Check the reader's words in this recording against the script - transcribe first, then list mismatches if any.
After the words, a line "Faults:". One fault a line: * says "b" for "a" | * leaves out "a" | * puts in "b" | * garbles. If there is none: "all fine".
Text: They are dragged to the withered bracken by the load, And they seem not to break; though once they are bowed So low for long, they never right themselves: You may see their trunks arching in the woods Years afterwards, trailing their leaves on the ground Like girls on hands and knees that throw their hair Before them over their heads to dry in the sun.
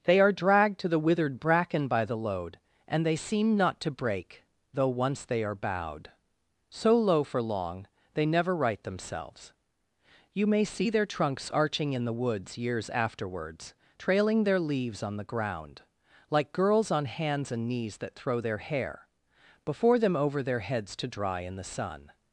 They are dragged to the withered bracken by the load, And they seem not to break; though once they are bowed So low for long, they never right themselves: You may see their trunks arching in the woods Years afterwards, trailing their leaves on the ground Like girls on hands and knees that throw their hair Before them over their heads to dry in the sun.
Faults:
all fine